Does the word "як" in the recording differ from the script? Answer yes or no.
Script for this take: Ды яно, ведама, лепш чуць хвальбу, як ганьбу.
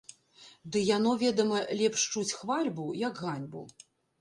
no